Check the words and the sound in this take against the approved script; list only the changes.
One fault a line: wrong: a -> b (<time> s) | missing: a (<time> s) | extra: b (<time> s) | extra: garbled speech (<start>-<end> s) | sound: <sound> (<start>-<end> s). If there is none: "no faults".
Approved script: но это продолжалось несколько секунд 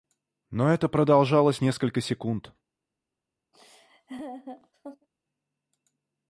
sound: laugh (3.5-5.1 s)